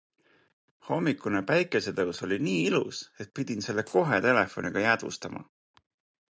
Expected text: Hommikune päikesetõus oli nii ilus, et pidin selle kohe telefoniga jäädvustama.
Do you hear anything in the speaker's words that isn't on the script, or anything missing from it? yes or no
no